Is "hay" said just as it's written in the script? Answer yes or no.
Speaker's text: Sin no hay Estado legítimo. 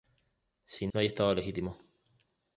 yes